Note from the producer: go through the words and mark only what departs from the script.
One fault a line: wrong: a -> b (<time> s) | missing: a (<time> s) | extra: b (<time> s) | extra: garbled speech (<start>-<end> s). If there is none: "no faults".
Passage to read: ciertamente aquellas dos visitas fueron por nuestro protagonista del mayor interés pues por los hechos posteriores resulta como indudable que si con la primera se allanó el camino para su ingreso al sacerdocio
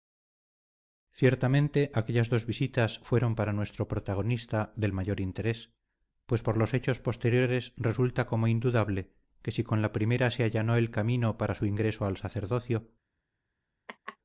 wrong: por -> para (3.3 s)